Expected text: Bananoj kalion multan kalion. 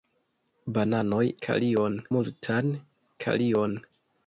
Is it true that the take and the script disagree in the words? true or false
false